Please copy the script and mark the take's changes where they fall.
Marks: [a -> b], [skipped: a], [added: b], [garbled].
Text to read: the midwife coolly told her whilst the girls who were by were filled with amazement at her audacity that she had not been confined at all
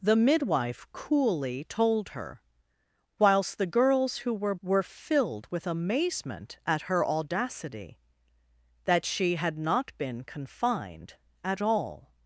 the midwife coolly told her whilst the girls who were [skipped: by] were filled with amazement at her audacity that she had not been confined at all